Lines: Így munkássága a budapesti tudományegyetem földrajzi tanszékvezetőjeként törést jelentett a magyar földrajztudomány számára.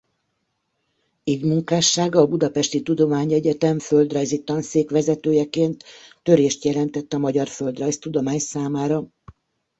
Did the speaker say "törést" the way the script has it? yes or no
yes